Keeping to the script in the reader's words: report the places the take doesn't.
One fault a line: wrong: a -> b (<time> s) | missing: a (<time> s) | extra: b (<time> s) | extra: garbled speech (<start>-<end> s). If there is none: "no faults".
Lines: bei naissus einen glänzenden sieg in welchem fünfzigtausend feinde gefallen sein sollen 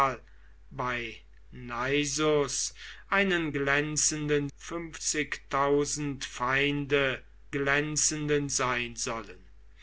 missing: sieg in welchem (4.5 s)
wrong: gefallen -> glänzenden (7.5 s)